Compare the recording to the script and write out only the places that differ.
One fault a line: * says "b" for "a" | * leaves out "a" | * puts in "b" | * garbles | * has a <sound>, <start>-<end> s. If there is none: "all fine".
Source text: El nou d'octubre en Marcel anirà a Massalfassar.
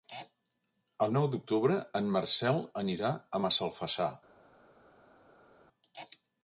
all fine